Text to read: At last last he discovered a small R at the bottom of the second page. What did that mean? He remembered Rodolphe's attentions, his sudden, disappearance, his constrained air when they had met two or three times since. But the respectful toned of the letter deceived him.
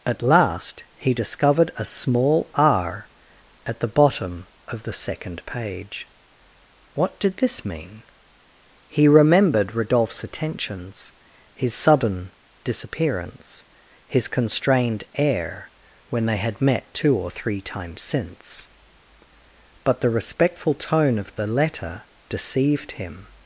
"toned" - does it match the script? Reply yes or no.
no